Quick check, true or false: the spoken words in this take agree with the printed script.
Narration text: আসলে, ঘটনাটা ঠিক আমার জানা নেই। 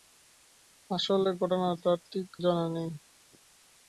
false